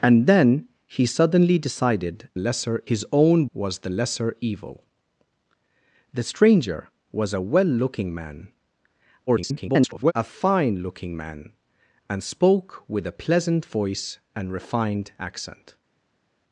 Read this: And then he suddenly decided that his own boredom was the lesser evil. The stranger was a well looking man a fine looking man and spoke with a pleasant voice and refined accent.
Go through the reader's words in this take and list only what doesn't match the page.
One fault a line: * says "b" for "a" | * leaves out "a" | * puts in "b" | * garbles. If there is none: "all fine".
* says "lesser" for "that"
* leaves out "boredom"
* garbles